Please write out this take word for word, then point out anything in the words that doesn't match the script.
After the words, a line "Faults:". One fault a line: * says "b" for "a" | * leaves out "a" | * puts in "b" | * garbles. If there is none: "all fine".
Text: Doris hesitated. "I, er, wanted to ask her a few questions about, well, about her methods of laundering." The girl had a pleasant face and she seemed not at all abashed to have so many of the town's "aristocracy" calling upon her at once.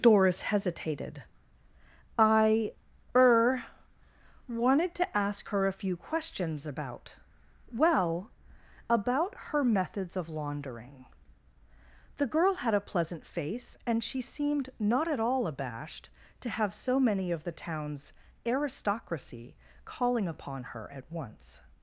Doris hesitated. "I, er, wanted to ask her a few questions about, well, about her methods of laundering." The girl had a pleasant face and she seemed not at all abashed to have so many of the town's "aristocracy" calling upon her at once.
Faults:
all fine